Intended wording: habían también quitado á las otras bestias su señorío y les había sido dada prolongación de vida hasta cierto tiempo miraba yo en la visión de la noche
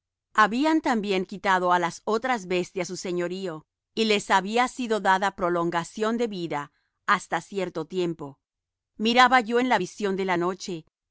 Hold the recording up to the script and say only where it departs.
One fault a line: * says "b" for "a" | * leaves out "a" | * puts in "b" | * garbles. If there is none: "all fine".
all fine